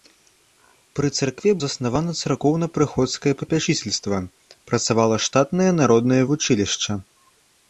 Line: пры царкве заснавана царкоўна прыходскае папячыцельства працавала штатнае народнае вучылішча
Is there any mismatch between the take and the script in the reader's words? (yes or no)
no